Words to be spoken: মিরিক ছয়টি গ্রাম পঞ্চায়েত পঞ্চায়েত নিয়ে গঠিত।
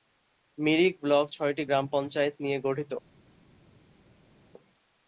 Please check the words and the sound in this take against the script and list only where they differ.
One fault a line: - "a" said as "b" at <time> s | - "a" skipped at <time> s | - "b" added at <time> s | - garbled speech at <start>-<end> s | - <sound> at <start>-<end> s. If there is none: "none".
- "ব্লক" added at 1.0 s
- "পঞ্চায়েত" skipped at 2.3 s